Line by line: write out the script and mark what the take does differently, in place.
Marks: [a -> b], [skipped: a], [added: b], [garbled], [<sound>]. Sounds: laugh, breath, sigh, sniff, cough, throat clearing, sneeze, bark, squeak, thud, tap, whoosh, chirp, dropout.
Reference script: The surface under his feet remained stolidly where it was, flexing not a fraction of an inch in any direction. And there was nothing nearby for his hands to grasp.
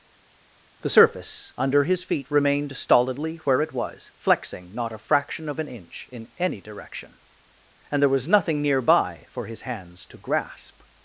The surface under his feet remained stolidly where it was, flexing not a fraction of an inch in any direction. And there was nothing nearby for his hands to grasp.